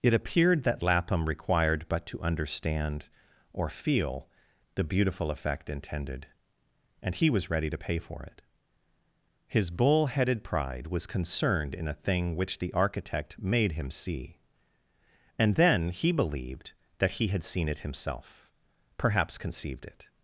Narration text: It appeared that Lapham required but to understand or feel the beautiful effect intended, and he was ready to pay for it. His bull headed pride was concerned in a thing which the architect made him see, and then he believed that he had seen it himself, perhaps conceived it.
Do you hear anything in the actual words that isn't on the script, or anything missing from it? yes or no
no